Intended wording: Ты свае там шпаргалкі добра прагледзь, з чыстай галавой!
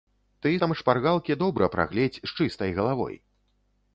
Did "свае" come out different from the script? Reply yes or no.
yes